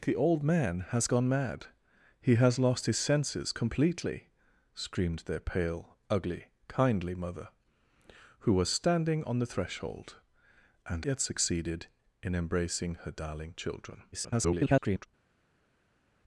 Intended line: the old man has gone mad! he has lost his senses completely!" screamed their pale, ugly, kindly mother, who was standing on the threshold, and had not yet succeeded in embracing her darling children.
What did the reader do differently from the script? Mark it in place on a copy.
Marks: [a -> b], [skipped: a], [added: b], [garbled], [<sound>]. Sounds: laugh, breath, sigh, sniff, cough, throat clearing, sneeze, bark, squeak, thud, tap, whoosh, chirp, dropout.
the old man has gone mad! he has lost his senses completely!" screamed their pale, ugly, kindly mother, who was standing on the threshold, and [skipped: had not] yet succeeded in embracing her darling children. [garbled]